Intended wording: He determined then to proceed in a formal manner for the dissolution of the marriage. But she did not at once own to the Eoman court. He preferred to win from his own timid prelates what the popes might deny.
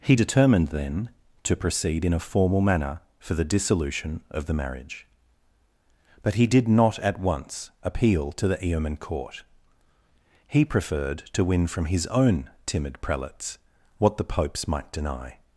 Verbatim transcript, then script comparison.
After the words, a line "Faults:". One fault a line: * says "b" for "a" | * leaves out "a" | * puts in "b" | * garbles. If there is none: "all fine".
He determined then to proceed in a formal manner for the dissolution of the marriage. But he did not at once appeal to the Eoman court. He preferred to win from his own timid prelates what the popes might deny.
Faults:
* says "he" for "she"
* says "appeal" for "own"